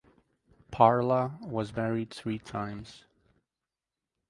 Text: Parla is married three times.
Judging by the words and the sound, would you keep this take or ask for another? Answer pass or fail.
fail